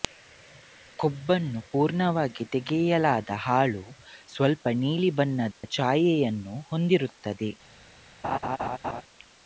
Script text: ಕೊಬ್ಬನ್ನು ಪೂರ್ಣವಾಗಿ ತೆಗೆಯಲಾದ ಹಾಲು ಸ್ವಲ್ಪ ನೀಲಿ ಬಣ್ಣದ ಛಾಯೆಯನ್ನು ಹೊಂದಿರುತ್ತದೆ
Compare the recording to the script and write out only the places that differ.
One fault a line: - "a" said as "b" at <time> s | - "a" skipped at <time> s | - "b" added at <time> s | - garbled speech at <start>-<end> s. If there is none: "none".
none